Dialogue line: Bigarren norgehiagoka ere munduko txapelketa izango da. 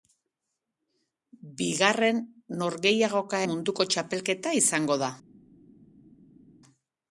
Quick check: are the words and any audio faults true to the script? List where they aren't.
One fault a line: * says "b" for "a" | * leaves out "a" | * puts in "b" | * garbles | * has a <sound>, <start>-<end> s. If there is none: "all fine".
* leaves out "ere"